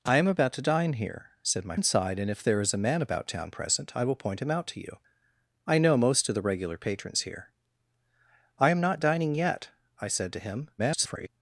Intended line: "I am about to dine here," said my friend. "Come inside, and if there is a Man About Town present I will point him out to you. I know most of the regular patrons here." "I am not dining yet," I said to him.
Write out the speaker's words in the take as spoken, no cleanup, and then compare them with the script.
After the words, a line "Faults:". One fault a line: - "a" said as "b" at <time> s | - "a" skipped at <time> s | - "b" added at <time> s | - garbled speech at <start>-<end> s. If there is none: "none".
"I am about to dine here," said my inside, and if there is a Man About Town present I will point him out to you. I know most of the regular patrons here." "I am not dining yet," I said to him. [garbled]
Faults:
- "friend Come" skipped at 1.8 s
- garbled speech at 10.8-11.3 s